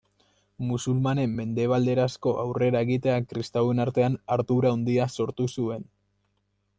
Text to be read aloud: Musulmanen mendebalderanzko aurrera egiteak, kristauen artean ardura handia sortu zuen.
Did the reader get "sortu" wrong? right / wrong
right